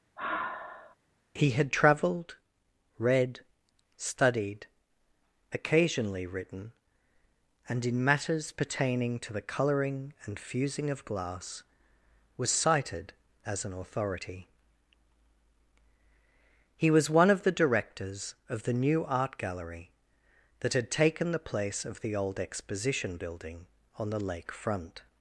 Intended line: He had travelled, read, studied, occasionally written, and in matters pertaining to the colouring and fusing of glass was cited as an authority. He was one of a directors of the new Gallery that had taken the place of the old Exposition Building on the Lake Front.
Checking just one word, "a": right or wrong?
wrong